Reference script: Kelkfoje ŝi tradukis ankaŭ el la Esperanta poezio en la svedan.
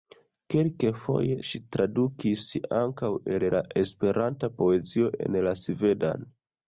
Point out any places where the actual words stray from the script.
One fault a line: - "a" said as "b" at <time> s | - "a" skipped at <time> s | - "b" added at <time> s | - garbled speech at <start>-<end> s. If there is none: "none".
none